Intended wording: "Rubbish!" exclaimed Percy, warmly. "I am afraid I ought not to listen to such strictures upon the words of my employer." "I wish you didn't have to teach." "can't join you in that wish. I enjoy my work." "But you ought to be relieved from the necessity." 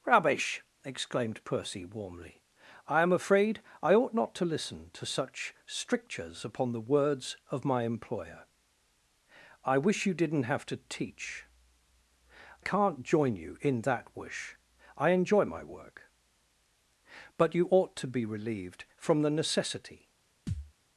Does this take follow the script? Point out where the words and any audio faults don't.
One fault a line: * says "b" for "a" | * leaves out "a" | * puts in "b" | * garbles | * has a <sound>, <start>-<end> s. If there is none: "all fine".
* has a thud, 20.5-20.7 s